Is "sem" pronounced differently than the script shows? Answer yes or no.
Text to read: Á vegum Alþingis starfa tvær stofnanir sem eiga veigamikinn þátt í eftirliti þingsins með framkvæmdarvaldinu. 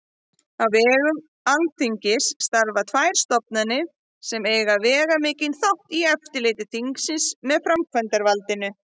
no